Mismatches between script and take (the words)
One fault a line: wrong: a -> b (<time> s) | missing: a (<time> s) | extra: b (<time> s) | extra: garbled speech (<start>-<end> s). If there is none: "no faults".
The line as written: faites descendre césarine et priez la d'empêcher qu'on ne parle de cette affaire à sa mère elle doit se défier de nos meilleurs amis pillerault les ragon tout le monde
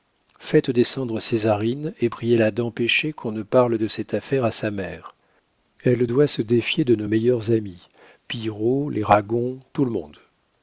no faults